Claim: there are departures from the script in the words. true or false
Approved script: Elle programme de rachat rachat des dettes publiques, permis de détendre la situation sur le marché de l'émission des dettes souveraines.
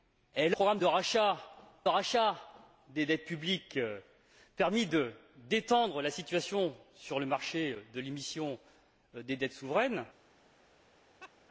false